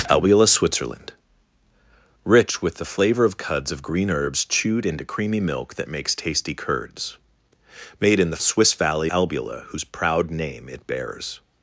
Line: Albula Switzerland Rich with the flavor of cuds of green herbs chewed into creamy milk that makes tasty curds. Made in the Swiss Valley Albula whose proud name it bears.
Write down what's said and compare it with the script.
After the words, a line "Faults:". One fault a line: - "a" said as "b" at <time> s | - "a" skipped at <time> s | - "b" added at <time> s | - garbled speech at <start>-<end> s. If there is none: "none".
Albula Switzerland Rich with the flavor of cuds of green herbs chewed into creamy milk that makes tasty curds. Made in the Swiss Valley Albula whose proud name it bears.
Faults:
none